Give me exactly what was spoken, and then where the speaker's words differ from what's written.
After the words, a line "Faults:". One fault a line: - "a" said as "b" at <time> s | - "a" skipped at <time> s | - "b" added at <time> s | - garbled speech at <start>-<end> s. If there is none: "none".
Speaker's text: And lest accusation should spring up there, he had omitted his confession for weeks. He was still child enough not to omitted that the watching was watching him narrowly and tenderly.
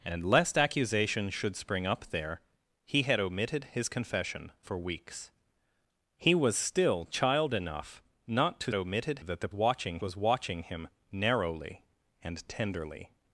And lest accusation should spring up there, he had omitted his confession for weeks. He was still child enough not to omitted that the watching was watching him narrowly and tenderly.
Faults:
none